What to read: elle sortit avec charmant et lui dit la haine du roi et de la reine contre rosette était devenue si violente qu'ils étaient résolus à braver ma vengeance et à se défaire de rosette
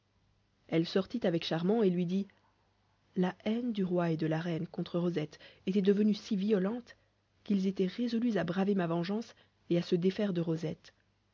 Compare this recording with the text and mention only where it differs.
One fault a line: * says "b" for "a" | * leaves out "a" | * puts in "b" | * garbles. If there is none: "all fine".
all fine